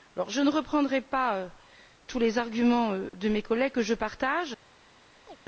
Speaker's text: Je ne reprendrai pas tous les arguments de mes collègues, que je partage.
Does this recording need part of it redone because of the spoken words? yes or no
no